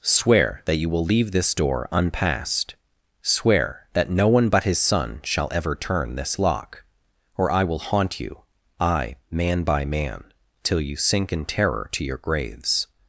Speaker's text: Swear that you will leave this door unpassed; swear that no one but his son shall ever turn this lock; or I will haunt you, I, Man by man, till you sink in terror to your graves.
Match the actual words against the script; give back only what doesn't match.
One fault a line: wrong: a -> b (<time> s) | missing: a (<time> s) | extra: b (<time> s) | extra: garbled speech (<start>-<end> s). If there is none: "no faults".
no faults